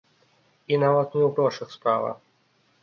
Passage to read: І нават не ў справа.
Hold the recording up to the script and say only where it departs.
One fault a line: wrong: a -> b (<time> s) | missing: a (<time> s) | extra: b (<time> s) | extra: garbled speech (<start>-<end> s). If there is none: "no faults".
extra: грошах (1.4 s)